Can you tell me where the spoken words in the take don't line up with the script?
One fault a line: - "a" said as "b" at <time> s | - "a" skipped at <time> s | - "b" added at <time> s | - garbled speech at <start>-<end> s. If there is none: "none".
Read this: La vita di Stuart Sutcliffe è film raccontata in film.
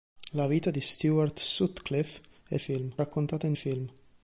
none